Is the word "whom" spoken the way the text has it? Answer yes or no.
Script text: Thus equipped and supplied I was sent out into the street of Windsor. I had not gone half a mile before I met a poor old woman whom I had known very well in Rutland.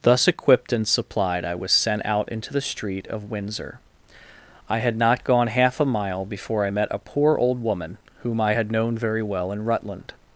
yes